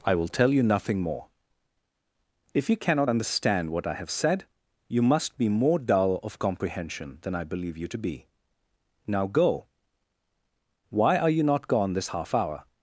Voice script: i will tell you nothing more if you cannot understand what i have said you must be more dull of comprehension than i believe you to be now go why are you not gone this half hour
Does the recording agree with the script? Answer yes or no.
yes